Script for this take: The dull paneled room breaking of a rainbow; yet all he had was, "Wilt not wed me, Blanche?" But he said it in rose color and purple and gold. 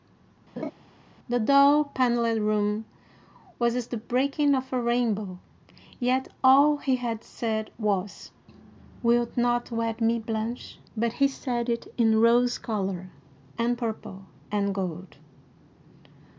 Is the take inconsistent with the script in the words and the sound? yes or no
yes